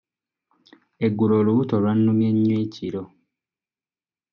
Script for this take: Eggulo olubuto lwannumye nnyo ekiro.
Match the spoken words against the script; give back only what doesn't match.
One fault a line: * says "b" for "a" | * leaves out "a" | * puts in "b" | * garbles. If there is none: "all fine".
all fine